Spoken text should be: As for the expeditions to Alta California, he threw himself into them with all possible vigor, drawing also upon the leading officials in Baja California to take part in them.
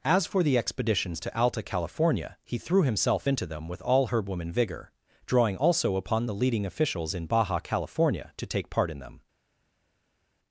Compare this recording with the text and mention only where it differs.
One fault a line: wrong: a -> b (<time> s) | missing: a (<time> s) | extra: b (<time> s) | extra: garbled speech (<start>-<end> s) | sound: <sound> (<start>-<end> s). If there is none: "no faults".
wrong: possible -> herbwoman (4.1 s)